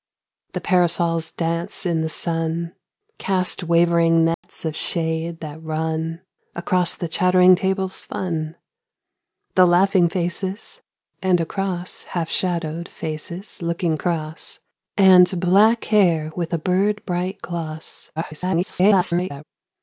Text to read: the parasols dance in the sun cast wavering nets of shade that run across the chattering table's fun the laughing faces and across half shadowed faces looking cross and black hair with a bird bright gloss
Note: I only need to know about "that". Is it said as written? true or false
true